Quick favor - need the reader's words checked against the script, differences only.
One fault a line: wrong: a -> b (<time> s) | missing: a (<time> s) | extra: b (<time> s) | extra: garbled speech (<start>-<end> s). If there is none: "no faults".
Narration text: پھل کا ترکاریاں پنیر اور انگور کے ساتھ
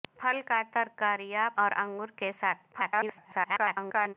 missing: پنیر (1.5 s)
extra: garbled speech (2.7-4.1 s)